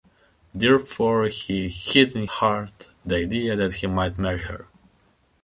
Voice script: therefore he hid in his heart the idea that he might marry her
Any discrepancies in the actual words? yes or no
yes